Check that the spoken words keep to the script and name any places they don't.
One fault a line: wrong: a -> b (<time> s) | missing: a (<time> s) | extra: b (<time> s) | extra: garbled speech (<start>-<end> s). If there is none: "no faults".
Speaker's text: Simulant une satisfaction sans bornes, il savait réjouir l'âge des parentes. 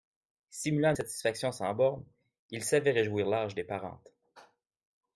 no faults